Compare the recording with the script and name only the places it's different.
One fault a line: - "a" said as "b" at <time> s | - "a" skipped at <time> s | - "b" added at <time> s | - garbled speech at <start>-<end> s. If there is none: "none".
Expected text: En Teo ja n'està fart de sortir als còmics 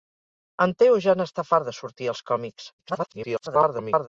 - garbled speech at 2.8-4.1 s